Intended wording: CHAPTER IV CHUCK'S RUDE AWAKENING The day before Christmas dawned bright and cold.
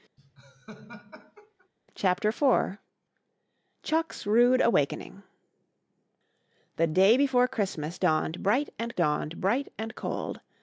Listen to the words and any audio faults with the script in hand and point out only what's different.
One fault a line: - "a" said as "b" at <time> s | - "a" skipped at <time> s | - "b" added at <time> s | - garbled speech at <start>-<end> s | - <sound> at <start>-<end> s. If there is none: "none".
- laugh at 0.2-1.7 s
- "dawned bright and" added at 8.9 s